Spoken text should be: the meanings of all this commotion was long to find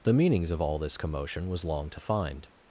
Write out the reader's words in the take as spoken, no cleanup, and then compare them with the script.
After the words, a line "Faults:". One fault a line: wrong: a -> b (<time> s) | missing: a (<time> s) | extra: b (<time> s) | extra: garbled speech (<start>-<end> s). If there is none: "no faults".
the meanings of all this commotion was long to find
Faults:
no faults